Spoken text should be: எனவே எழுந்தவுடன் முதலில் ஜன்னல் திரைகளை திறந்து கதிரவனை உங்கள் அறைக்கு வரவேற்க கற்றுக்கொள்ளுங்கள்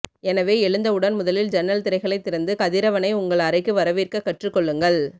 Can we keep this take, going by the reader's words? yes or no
yes